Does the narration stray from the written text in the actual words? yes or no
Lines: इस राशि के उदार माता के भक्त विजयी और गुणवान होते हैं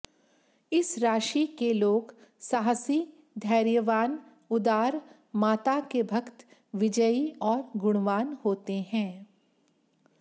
yes